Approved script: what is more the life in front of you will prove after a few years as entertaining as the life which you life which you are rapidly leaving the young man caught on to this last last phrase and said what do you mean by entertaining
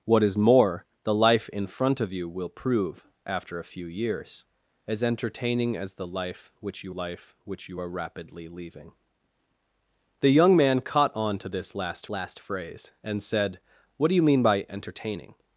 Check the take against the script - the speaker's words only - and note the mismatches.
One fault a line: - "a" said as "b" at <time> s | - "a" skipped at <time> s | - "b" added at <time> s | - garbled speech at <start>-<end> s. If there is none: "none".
none